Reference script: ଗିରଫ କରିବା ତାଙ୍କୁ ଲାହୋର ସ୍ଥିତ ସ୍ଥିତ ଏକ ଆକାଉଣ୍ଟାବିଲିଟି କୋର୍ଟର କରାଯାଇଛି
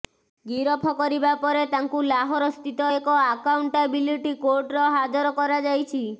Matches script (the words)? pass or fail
fail